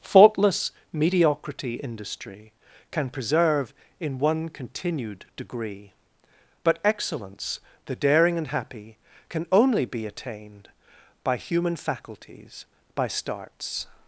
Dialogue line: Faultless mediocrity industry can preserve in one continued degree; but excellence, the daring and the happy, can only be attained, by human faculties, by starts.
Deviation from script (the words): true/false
true